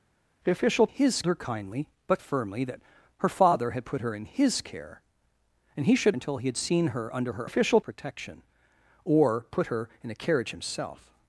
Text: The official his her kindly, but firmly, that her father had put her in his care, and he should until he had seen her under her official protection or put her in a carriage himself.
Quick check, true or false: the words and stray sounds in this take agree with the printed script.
true